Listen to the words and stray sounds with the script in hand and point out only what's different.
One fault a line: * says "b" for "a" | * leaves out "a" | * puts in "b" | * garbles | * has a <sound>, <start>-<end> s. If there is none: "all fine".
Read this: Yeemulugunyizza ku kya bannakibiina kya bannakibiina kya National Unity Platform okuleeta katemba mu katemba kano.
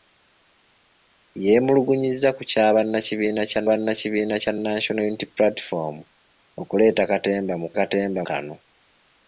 all fine